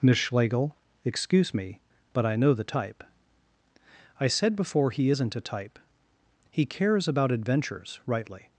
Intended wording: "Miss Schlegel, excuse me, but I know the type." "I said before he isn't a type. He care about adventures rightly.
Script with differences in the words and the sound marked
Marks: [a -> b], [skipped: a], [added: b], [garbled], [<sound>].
"Miss Schlegel, excuse me, but I know the type." "I said before he isn't a type. He [care -> cares] about adventures rightly.